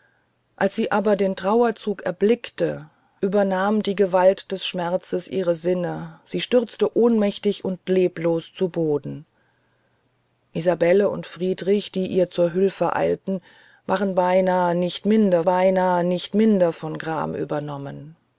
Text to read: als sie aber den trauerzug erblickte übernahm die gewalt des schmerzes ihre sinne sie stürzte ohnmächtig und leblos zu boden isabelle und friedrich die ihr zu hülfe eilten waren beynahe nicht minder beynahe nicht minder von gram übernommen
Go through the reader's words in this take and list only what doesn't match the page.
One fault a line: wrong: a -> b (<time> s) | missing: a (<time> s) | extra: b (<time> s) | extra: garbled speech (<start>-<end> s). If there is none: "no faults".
no faults